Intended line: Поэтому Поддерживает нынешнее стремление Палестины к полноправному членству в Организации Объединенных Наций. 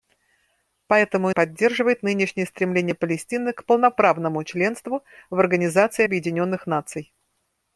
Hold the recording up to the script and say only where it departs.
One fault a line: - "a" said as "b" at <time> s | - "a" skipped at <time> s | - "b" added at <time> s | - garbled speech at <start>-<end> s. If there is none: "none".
none